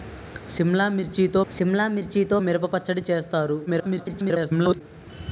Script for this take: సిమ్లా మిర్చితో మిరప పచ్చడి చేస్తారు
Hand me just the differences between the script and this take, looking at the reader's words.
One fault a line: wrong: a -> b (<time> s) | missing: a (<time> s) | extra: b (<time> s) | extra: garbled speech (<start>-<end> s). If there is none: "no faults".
extra: సిమ్లా మిర్చితో (1.5 s)
extra: garbled speech (3.7-4.8 s)